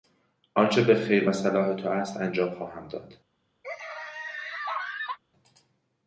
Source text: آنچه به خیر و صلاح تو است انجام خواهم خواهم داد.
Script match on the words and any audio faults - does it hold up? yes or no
no